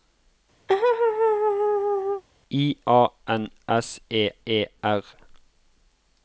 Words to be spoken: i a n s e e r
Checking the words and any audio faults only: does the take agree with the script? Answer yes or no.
no